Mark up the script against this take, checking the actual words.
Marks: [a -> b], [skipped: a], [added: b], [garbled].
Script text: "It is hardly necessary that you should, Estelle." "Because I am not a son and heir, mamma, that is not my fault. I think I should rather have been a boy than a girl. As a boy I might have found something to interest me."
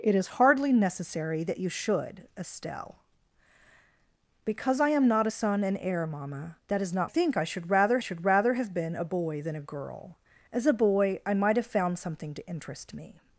"It is hardly necessary that you should, Estelle." "Because I am not a son and heir, mamma, that is not [my fault. -> think] I [think I -> should rather] should rather have been a boy than a girl. As a boy I might have found something to interest me."